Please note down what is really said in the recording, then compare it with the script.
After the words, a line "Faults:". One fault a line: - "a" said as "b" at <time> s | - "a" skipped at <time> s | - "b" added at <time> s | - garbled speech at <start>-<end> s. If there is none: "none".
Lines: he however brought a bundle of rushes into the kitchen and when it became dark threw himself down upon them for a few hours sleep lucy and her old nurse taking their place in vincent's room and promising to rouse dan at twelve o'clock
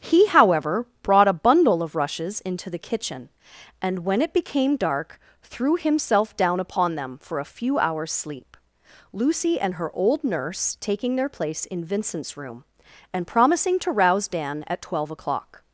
he however brought a bundle of rushes into the kitchen and when it became dark threw himself down upon them for a few hours sleep lucy and her old nurse taking their place in vincent's room and promising to rouse dan at twelve o'clock
Faults:
none